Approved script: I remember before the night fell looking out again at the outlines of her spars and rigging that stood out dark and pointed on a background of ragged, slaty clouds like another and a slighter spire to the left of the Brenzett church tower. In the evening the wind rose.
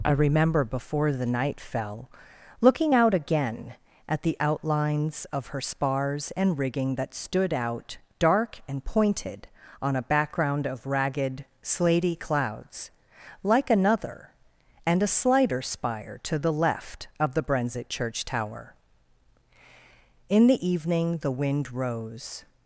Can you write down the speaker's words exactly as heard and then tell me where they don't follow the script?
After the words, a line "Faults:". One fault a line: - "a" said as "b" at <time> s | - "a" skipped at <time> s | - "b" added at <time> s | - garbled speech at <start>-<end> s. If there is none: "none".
I remember before the night fell looking out again at the outlines of her spars and rigging that stood out dark and pointed on a background of ragged, slaty clouds like another and a slighter spire to the left of the Brenzett church tower. In the evening the wind rose.
Faults:
none